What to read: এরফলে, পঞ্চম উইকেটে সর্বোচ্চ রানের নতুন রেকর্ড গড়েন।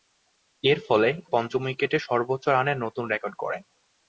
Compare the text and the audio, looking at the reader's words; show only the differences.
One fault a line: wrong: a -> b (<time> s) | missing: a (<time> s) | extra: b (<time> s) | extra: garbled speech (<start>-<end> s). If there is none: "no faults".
no faults